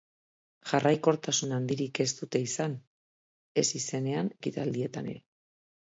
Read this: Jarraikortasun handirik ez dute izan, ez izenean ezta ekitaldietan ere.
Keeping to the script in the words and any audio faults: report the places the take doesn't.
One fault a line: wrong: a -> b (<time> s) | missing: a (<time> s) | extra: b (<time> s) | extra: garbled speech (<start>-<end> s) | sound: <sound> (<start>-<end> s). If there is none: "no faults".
missing: ezta (4.3 s)